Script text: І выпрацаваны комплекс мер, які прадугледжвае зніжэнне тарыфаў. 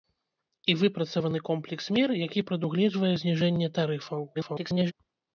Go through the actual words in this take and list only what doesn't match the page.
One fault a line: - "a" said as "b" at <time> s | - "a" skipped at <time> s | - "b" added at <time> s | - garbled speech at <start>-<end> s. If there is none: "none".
- garbled speech at 4.3-4.9 s